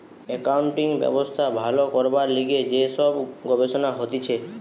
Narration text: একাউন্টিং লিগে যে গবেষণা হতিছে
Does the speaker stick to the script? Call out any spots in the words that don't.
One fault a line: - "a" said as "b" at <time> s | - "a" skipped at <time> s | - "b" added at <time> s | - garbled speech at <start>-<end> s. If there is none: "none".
- "ব্যবস্থা ভালো করবার" added at 1.0 s
- "সব" added at 3.0 s